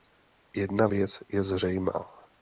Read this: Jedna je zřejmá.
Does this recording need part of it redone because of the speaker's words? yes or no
yes